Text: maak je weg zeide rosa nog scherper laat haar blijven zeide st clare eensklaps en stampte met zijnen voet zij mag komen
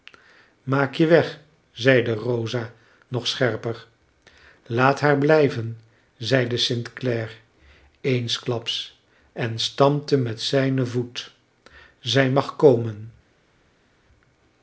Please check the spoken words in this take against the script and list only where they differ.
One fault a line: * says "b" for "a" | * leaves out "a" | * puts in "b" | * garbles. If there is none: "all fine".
all fine